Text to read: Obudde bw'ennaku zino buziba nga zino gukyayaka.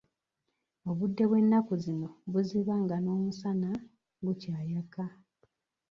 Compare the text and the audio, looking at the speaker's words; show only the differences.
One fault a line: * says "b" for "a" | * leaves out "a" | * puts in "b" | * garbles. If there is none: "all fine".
* says "n'omusana" for "zino"